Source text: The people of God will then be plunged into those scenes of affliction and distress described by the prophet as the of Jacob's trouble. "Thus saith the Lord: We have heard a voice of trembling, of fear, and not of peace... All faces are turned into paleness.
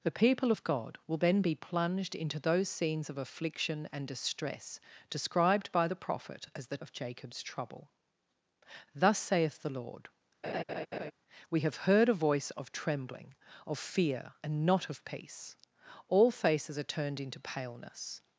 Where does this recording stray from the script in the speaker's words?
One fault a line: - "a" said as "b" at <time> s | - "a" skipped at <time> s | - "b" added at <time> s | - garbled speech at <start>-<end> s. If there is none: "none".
none